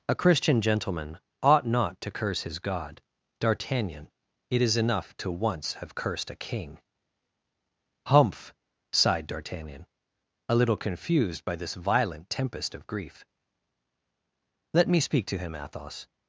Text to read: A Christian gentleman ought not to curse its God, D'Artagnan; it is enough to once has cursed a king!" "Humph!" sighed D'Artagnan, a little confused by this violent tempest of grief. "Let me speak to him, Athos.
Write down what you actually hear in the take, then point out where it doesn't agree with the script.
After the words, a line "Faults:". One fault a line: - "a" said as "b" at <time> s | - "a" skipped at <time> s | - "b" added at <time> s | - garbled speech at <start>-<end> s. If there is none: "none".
A Christian gentleman ought not to curse his God, D'Artagnan; it is enough to once have cursed a king!" "Humph!" sighed D'Artagnan, a little confused by this violent tempest of grief. "Let me speak to him, Athos.
Faults:
- "its" said as "his" at 2.4 s
- "has" said as "have" at 5.8 s